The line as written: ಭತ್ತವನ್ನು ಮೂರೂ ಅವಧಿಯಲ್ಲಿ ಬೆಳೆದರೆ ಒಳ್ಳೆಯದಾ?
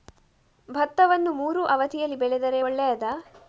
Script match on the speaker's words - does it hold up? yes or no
yes